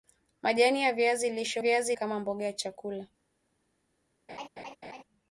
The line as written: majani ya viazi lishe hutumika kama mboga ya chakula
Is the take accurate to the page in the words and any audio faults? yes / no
no